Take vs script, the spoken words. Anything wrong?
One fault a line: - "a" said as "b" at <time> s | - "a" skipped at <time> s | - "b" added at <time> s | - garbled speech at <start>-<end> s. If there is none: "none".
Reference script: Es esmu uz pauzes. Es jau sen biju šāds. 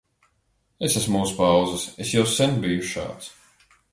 none